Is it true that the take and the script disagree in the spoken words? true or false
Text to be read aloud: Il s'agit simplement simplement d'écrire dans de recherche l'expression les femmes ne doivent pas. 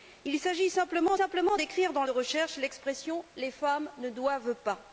false